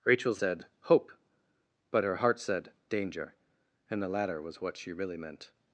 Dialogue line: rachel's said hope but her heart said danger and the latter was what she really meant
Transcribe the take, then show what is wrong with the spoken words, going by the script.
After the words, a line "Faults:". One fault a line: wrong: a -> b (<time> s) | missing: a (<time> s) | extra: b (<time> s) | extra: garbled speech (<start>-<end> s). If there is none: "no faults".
rachel's said hope but her heart said danger and the latter was what she really meant
Faults:
no faults